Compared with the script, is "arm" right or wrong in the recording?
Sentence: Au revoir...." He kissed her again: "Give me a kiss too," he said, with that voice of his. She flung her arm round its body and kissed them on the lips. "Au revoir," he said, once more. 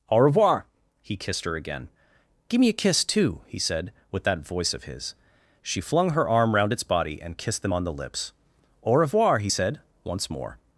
right